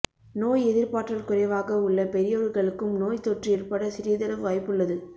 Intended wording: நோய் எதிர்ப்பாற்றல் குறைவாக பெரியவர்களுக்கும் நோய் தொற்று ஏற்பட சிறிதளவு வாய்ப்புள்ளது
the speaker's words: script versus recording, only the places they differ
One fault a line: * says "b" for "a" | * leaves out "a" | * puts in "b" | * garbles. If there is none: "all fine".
* puts in "உள்ள"